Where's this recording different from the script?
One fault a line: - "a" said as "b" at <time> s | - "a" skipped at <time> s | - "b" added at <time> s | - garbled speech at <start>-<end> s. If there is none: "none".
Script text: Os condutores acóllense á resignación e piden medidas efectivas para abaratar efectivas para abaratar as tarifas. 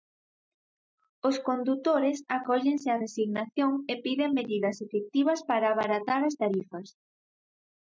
- "efectivas para abaratar" skipped at 6.2 s